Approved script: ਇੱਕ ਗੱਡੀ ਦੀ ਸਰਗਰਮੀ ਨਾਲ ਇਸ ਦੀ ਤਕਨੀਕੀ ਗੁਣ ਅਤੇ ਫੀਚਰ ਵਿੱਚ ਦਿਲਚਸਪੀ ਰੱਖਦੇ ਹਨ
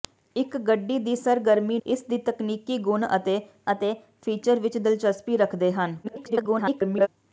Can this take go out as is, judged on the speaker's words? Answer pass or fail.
fail